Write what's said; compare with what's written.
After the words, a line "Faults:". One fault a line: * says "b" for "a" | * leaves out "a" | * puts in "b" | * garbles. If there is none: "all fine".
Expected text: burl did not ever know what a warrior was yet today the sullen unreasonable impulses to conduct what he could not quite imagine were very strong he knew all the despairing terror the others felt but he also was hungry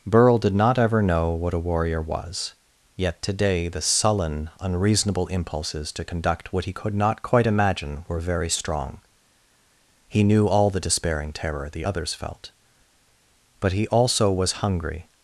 burl did not ever know what a warrior was yet today the sullen unreasonable impulses to conduct what he could not quite imagine were very strong he knew all the despairing terror the others felt but he also was hungry
Faults:
all fine